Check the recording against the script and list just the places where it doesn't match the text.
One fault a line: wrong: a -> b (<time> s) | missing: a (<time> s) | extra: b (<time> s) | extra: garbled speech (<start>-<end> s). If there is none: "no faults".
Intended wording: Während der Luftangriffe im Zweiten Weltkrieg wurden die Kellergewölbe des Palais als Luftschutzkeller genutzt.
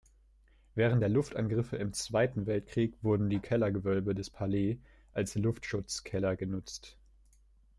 no faults